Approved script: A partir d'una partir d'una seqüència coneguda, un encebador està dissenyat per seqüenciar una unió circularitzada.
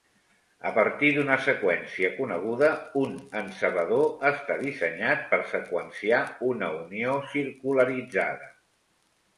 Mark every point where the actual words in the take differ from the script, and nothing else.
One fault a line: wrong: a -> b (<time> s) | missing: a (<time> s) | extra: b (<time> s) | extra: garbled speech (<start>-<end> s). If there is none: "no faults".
missing: partir d'una (1.4 s)